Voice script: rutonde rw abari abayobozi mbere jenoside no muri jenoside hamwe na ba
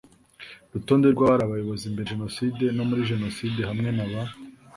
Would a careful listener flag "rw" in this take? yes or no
no